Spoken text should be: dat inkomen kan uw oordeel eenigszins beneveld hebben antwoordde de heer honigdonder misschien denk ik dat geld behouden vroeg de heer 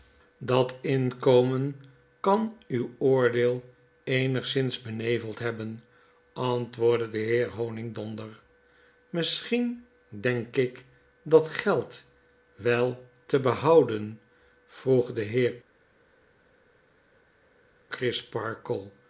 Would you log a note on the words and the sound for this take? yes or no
yes